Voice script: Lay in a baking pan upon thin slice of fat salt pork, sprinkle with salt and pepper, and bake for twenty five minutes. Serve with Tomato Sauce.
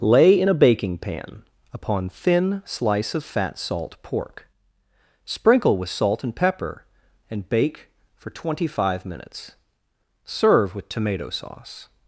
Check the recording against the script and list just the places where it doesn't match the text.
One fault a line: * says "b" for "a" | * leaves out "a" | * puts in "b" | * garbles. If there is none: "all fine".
all fine